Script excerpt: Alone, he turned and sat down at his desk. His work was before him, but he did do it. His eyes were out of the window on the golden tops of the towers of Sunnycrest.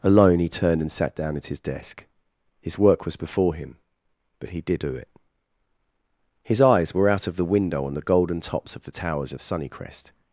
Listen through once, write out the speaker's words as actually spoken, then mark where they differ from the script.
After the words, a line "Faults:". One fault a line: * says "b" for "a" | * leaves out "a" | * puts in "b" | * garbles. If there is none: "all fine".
Alone, he turned and sat down at his desk. His work was before him, but he did do it. His eyes were out of the window on the golden tops of the towers of Sunnycrest.
Faults:
all fine